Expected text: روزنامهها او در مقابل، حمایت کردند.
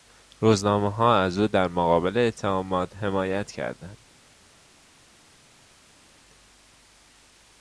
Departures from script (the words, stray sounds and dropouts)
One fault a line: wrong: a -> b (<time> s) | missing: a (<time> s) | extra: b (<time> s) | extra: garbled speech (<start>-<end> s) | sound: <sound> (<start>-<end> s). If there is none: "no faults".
extra: از (1.1 s)
extra: اتهامات (2.2 s)